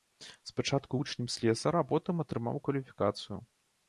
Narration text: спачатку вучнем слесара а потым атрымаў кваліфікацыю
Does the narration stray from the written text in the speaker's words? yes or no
no